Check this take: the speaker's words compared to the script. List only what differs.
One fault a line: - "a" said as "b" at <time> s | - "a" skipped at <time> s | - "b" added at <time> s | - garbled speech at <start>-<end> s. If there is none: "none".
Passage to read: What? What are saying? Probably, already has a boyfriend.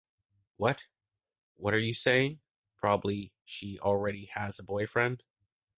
- "you" added at 1.8 s
- "she" added at 3.5 s